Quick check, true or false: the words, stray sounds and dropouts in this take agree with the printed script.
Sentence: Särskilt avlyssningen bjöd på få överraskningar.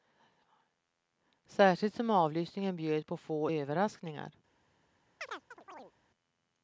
false